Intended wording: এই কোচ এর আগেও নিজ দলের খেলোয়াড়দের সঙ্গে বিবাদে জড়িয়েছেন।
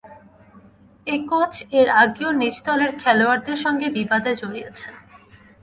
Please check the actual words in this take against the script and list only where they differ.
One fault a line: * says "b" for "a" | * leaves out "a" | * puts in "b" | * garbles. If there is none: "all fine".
all fine